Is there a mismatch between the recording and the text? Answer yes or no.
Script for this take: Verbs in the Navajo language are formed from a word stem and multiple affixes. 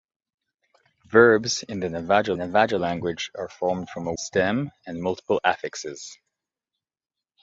yes